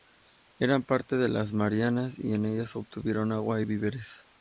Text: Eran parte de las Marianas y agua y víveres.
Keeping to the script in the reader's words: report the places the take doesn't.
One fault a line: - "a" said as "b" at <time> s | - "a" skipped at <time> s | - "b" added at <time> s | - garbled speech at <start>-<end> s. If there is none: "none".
- "en ellas obtuvieron" added at 2.3 s